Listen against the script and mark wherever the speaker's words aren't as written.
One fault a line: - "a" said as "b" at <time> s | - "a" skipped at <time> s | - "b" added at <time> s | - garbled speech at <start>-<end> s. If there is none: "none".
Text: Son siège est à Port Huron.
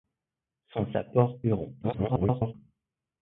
- "siège est" skipped at 0.9 s
- garbled speech at 1.8-2.5 s